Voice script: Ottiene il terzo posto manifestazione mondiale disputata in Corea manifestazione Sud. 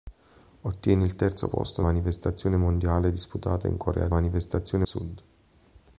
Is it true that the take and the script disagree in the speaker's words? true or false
false